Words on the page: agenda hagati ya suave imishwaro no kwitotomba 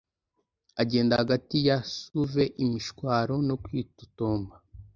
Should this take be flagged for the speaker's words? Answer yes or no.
no